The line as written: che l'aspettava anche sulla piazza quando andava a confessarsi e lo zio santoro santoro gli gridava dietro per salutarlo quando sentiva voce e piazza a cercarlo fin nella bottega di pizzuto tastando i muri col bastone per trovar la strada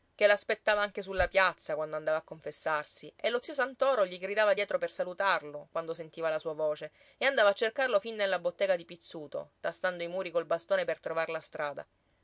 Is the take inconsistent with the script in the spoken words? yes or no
yes